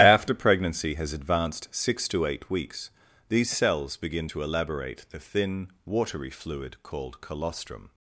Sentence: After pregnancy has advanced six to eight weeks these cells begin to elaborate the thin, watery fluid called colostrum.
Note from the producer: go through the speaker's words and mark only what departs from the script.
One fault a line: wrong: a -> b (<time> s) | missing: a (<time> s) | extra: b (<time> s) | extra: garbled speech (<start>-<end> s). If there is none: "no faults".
no faults